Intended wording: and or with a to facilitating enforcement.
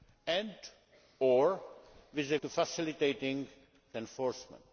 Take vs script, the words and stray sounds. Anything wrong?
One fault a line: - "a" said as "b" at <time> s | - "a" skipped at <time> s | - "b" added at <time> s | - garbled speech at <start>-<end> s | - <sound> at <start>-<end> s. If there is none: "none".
none